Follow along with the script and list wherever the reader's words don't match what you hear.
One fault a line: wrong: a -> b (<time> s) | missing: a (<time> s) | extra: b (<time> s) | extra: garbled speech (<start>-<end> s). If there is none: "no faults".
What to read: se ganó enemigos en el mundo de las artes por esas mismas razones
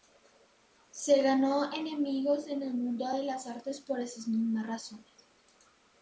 no faults